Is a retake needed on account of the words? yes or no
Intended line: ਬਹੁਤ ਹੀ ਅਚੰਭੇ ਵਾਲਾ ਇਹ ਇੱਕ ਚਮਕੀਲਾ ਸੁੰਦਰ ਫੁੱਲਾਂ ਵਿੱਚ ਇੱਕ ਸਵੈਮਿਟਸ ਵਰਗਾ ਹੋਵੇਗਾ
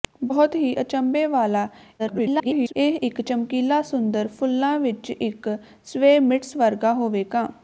yes